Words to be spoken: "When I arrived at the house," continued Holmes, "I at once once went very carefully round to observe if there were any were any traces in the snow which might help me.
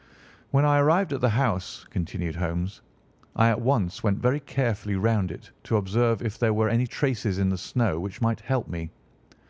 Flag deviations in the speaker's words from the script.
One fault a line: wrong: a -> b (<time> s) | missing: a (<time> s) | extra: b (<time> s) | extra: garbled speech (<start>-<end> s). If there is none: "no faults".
missing: once (4.0 s)
extra: it (5.3 s)
missing: were any (6.9 s)